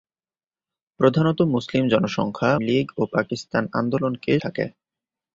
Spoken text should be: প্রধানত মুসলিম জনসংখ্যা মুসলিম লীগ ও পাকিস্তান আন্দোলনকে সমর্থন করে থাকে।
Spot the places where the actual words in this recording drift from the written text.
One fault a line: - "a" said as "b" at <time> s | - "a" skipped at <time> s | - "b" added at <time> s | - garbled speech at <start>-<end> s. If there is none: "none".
- "মুসলিম" skipped at 2.5 s
- "সমর্থন করে" skipped at 4.3 s